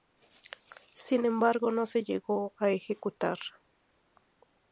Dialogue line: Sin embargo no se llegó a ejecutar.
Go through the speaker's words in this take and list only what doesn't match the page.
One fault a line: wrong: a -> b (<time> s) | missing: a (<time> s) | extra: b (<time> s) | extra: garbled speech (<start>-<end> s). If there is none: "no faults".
no faults